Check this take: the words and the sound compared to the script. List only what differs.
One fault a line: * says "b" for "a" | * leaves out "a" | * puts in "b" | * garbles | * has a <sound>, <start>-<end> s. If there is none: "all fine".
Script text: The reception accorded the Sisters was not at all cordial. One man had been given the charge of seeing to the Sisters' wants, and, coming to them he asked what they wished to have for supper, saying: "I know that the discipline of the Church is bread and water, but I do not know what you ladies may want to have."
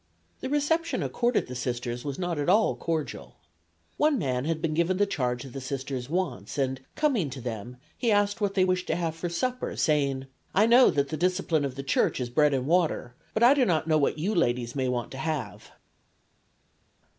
* leaves out "of seeing"